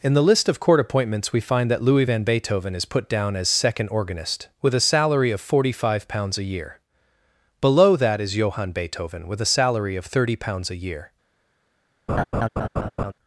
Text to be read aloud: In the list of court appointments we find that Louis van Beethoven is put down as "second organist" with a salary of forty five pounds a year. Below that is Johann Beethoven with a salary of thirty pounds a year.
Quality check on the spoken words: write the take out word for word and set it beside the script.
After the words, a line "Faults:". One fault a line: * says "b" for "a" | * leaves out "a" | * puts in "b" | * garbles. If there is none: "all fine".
In the list of court appointments we find that Louis van Beethoven is put down as "second organist" with a salary of forty five pounds a year. Below that is Johann Beethoven with a salary of thirty pounds a year.
Faults:
all fine